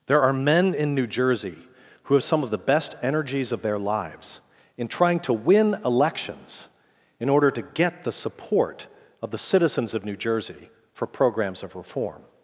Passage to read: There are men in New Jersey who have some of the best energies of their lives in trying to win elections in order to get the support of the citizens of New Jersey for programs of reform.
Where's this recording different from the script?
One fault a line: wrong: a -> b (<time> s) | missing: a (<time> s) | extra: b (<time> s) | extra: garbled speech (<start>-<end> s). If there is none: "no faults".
no faults